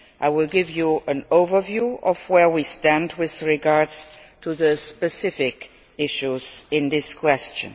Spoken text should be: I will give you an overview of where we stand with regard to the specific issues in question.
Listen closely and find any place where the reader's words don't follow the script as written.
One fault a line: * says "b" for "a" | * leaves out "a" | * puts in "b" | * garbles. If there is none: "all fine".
all fine